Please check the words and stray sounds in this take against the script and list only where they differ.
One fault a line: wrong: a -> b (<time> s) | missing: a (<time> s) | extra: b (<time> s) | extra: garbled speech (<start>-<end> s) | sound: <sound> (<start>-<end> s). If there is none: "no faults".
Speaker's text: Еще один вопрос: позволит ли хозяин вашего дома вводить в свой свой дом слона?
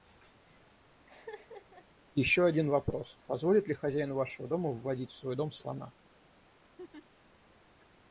sound: laugh (1.1-1.9 s)
missing: свой (5.4 s)
sound: laugh (6.8-7.1 s)